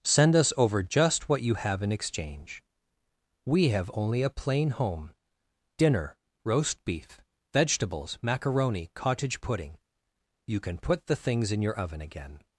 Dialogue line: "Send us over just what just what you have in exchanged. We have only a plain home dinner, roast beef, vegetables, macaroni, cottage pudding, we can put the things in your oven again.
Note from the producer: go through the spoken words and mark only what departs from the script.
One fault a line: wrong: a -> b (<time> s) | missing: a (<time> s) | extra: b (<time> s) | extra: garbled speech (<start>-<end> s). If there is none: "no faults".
missing: just what (1.4 s)
wrong: exchanged -> exchange (1.9 s)
wrong: we -> you (10.5 s)